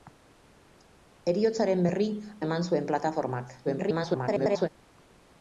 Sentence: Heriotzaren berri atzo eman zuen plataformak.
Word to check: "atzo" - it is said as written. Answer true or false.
false